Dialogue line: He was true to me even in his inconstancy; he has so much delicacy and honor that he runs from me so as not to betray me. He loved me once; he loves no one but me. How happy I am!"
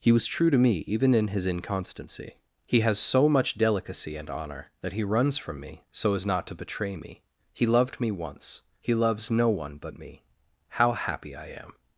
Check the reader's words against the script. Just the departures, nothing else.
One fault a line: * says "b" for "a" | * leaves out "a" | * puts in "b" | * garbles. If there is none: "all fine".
all fine